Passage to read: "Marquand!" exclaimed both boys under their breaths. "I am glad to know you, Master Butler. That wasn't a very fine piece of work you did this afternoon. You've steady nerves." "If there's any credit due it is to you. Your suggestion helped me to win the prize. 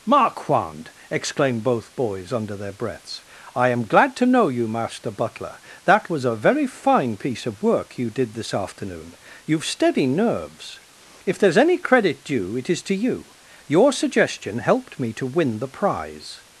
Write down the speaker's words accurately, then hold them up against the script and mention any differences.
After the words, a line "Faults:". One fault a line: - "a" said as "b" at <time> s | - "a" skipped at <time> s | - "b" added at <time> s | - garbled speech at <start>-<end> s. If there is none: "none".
"Marquand!" exclaimed both boys under their breaths. "I am glad to know you, Master Butler. That was a very fine piece of work you did this afternoon. You've steady nerves." "If there's any credit due it is to you. Your suggestion helped me to win the prize.
Faults:
- "wasn't" said as "was" at 6.1 s